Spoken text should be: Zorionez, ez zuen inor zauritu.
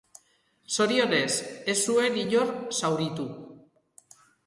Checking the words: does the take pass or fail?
pass